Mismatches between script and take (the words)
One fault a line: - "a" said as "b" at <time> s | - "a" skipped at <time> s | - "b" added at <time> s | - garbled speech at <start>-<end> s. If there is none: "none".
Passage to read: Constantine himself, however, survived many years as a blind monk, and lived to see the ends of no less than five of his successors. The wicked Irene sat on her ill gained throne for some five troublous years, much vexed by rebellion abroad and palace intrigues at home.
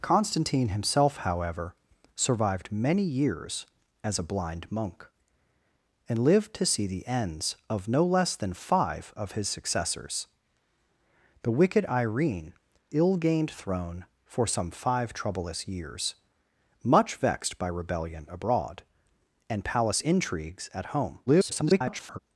- "sat on her" skipped at 12.5 s
- garbled speech at 21.3-22.2 s